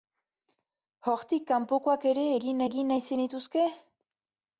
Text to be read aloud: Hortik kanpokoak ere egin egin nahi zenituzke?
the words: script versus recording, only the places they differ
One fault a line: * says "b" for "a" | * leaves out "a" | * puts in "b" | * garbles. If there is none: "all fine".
all fine